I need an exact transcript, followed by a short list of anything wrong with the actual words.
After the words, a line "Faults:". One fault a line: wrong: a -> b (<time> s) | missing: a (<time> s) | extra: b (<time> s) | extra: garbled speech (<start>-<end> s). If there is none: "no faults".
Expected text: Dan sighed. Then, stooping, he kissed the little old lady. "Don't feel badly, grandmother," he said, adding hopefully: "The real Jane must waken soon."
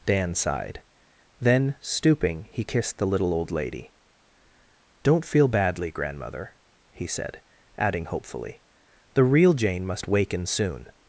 Dan sighed. Then, stooping, he kissed the little old lady. "Don't feel badly, grandmother," he said, adding hopefully: "The real Jane must waken soon."
Faults:
no faults